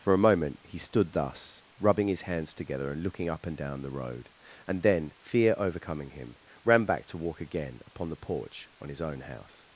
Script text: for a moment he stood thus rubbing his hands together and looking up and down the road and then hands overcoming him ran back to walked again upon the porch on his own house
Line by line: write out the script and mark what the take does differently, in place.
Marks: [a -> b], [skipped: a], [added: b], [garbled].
for a moment he stood thus rubbing his hands together and looking up and down the road and then [hands -> fear] overcoming him ran back to [walked -> walk] again upon the porch on his own house